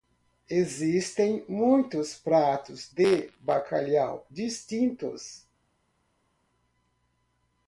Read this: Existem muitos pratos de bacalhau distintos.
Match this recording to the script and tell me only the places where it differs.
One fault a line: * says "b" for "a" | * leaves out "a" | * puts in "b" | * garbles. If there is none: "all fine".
all fine